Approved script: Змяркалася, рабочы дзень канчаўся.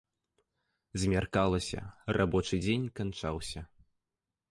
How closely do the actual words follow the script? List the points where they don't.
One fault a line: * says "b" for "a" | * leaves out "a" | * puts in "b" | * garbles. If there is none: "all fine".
all fine